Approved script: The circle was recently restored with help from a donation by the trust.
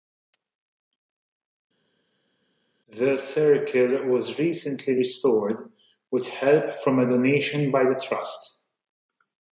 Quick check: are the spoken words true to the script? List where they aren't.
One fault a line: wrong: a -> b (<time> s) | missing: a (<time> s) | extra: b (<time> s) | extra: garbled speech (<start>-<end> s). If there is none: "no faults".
no faults